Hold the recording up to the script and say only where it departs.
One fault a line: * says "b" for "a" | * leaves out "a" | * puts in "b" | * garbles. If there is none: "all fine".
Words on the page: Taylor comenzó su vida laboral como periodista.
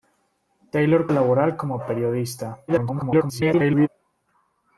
* leaves out "comenzó su vida"
* garbles